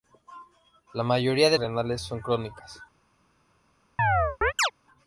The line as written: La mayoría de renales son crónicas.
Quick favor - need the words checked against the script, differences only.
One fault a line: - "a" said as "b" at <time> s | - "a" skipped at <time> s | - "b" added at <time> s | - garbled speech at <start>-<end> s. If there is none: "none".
none